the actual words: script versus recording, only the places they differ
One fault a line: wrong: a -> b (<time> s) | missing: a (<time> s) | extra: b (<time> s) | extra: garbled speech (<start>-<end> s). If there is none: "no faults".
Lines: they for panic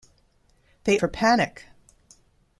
no faults